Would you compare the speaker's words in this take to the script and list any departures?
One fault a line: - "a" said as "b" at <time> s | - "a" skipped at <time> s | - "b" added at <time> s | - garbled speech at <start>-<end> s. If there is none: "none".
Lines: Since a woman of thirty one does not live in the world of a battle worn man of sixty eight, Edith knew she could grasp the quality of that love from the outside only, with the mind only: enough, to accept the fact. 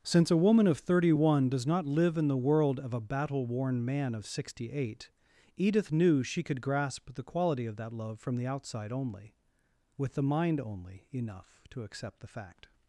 none